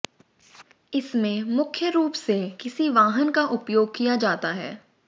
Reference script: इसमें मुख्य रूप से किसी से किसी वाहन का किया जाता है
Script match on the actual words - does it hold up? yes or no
no